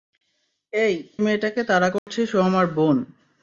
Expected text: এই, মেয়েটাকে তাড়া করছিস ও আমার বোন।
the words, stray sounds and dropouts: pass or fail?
fail